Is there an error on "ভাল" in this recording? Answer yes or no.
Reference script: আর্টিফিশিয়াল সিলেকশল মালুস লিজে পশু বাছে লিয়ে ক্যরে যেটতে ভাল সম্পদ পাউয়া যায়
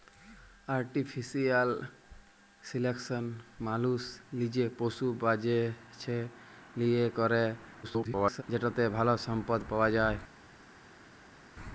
no